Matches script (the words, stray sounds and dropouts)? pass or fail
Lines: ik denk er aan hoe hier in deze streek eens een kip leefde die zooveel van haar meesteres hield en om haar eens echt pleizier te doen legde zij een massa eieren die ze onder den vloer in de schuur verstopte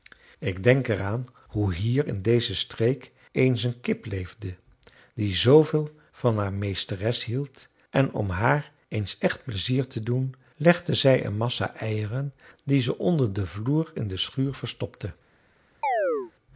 fail